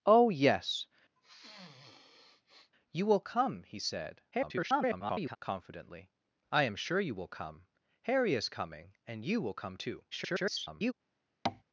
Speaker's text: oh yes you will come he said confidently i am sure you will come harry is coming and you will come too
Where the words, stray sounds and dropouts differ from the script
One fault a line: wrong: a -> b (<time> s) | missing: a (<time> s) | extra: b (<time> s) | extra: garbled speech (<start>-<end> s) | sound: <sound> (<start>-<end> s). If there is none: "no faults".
sound: sniff (1.2-2.7 s)
extra: garbled speech (4.3-5.4 s)
extra: garbled speech (10.1-10.9 s)
sound: tap (11.5-11.6 s)